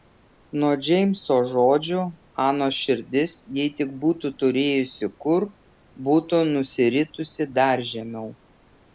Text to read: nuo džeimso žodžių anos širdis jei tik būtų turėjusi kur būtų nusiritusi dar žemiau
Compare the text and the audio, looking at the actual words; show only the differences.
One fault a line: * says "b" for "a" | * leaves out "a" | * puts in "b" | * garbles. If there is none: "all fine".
all fine